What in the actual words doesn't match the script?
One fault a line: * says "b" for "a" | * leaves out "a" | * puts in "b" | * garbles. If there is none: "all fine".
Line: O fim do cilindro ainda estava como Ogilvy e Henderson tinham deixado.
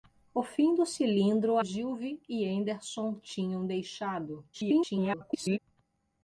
* leaves out "ainda estava como"
* garbles